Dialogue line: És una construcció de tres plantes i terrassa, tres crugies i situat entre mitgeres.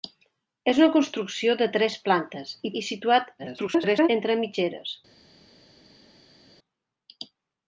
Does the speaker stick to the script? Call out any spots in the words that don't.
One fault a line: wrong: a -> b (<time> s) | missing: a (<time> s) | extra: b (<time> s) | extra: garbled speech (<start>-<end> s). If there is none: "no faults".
missing: terrassa tres crugies (2.7 s)
extra: garbled speech (3.4-4.1 s)